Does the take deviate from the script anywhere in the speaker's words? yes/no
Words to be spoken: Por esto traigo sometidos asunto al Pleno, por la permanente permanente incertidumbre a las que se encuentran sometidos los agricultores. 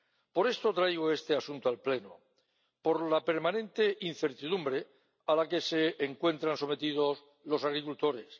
yes